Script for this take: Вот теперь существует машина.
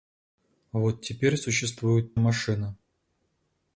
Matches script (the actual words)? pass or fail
pass